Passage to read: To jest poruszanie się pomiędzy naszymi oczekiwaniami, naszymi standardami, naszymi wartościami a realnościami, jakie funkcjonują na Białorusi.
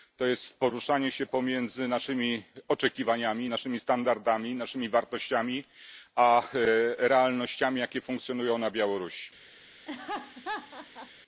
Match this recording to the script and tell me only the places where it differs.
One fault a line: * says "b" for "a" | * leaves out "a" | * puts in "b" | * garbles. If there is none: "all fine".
all fine